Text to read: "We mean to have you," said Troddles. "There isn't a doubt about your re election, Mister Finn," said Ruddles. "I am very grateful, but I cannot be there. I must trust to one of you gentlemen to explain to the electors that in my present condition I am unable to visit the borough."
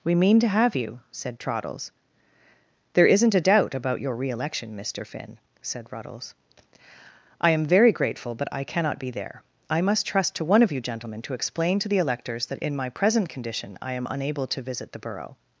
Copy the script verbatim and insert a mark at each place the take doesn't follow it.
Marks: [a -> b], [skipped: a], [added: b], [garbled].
"We mean to have you," said Troddles. "There isn't a doubt about your re election, Mister Finn," said Ruddles. "I am very grateful, but I cannot be there. I must trust to one of you gentlemen to explain to the electors that in my present condition I am unable to visit the borough."